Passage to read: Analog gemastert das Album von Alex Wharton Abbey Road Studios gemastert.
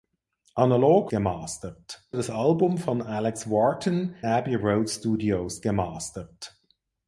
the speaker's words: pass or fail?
pass